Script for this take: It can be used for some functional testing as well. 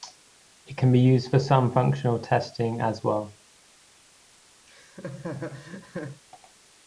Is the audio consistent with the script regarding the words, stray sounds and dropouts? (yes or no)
no